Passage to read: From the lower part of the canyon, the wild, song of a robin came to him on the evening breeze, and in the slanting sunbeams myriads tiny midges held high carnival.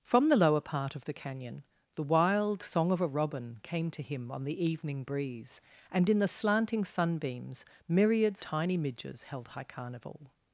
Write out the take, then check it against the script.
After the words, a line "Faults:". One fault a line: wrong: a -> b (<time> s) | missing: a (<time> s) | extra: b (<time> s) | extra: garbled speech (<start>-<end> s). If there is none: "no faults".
From the lower part of the canyon, the wild, song of a robin came to him on the evening breeze, and in the slanting sunbeams myriads tiny midges held high carnival.
Faults:
no faults